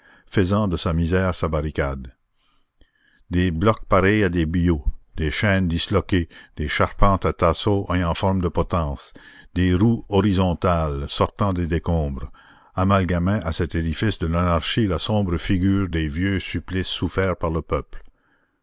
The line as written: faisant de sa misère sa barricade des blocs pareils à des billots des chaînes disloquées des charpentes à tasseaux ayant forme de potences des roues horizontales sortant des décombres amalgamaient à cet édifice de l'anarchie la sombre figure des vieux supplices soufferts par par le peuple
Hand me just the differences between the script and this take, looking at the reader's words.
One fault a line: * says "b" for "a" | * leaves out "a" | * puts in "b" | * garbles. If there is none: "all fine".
* leaves out "par"